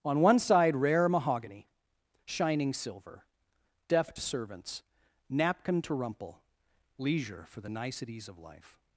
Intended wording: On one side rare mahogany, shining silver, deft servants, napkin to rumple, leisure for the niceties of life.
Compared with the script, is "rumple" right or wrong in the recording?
right